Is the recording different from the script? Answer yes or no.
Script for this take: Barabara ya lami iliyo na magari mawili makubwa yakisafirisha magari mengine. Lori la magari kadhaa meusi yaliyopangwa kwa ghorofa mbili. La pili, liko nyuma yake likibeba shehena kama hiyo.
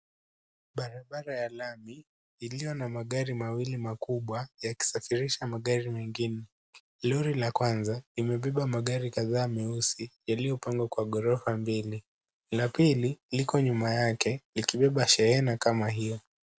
yes